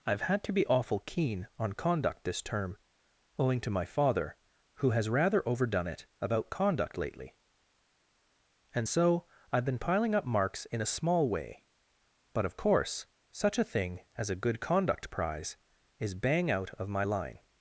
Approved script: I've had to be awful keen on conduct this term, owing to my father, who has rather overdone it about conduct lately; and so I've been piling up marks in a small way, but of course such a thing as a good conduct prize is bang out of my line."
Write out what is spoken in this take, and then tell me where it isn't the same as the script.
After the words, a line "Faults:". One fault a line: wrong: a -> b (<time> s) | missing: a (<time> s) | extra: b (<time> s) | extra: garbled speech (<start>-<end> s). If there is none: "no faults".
I've had to be awful keen on conduct this term, owing to my father, who has rather overdone it about conduct lately; and so I've been piling up marks in a small way, but of course such a thing as a good conduct prize is bang out of my line."
Faults:
no faults